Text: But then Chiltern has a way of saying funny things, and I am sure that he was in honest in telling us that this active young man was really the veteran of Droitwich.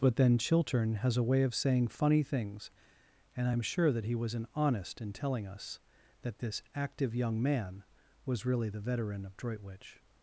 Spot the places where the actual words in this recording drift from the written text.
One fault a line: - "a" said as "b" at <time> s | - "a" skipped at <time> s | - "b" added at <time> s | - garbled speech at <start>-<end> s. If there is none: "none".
none